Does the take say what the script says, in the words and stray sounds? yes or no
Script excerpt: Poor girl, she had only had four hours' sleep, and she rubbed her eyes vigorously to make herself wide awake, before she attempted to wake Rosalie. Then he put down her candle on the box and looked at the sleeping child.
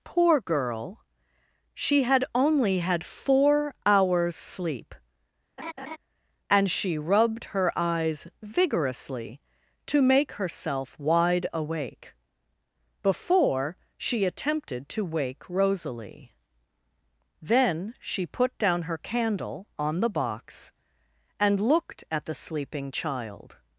no